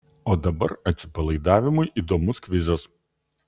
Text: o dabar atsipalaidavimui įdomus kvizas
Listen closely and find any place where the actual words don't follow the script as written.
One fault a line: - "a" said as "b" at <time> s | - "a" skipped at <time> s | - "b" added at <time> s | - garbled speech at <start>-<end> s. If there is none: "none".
none